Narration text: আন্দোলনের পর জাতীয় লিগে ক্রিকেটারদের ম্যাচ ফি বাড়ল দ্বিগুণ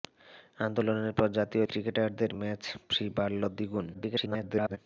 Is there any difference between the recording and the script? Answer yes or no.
yes